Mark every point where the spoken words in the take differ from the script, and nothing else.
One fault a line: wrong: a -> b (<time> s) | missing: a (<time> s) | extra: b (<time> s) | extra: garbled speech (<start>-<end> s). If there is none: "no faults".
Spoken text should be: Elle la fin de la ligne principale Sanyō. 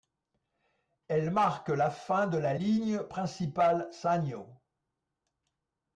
extra: marque (1.3 s)